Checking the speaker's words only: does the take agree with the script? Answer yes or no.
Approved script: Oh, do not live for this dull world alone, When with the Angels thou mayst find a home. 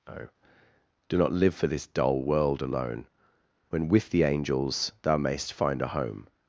yes